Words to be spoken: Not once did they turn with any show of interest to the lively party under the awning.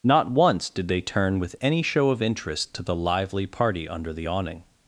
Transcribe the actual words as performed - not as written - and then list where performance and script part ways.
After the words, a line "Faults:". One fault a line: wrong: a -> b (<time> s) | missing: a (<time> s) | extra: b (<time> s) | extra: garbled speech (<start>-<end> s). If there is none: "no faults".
Not once did they turn with any show of interest to the lively party under the awning.
Faults:
no faults